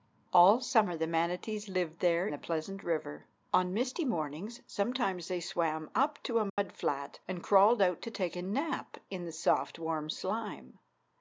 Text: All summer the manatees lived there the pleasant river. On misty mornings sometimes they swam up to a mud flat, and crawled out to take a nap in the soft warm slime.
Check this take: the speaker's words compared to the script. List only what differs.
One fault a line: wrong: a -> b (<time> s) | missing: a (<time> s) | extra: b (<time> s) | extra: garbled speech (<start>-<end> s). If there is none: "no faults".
no faults